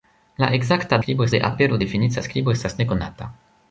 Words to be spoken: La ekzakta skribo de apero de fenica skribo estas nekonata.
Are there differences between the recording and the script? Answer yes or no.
no